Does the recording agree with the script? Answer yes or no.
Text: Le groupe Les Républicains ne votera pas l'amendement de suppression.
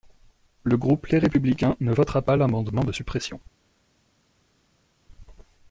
yes